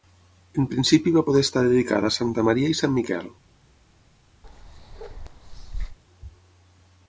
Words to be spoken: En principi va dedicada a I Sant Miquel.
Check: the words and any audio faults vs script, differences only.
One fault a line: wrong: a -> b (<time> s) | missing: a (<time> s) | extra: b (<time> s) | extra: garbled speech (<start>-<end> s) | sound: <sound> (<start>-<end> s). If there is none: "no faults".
extra: poder estar (1.3 s)
extra: Santa Maria (2.2 s)
sound: bark (4.4-6.0 s)